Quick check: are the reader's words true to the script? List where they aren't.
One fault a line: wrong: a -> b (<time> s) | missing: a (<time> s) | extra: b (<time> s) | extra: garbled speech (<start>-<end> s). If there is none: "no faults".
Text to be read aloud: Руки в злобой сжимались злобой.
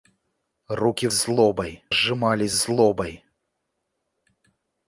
no faults